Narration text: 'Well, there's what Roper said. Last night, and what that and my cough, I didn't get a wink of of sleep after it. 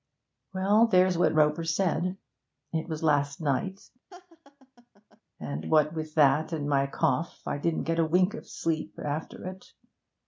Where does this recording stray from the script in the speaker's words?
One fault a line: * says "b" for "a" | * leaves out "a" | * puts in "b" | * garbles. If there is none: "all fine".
* puts in "It was"
* puts in "with"
* leaves out "of"